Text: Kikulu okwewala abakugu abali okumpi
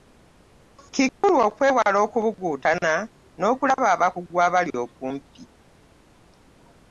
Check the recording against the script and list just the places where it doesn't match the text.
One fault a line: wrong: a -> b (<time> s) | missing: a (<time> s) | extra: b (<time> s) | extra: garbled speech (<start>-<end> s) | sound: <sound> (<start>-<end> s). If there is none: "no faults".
sound: dropout (1.1-1.2 s)
extra: okubuguutana n'okulaba (2.0 s)